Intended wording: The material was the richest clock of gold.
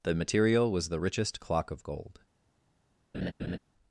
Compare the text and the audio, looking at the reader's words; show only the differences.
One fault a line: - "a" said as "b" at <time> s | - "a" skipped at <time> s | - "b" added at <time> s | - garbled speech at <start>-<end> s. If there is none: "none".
none